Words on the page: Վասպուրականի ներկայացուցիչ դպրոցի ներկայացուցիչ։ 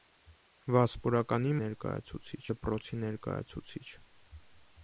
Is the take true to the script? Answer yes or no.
yes